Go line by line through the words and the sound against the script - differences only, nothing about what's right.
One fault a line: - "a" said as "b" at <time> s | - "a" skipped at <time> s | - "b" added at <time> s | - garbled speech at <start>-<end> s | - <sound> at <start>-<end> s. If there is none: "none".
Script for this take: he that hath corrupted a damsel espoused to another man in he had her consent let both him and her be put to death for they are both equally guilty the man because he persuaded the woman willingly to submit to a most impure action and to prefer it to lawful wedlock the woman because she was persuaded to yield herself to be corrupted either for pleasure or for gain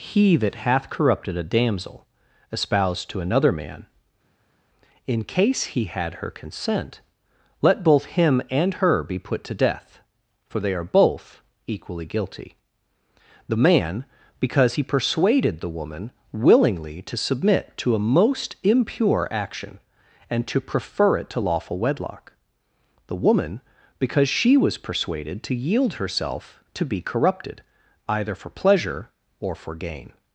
- "case" added at 5.2 s